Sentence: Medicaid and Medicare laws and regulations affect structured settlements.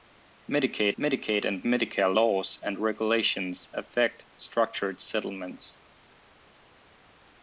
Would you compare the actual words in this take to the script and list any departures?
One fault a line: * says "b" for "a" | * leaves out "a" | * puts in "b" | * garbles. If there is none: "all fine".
* puts in "medicaid"